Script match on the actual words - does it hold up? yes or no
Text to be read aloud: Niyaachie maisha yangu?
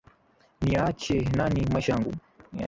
no